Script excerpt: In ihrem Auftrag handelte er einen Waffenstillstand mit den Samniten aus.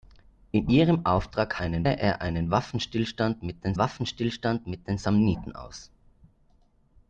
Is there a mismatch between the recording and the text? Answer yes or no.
yes